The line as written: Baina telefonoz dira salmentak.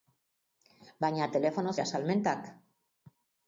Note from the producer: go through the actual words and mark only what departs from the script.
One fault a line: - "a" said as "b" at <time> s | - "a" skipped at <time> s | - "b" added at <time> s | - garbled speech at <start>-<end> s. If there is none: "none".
none